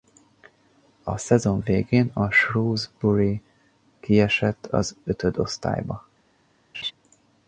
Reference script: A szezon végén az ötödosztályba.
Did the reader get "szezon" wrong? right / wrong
right